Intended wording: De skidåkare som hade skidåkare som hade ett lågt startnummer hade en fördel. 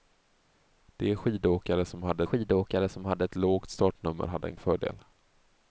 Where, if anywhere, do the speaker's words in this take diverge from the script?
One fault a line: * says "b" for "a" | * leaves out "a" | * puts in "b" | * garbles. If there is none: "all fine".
all fine